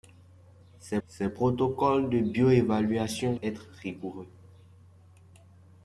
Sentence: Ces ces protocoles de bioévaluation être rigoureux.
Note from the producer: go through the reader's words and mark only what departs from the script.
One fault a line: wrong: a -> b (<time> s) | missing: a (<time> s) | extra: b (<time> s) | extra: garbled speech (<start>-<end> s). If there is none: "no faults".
no faults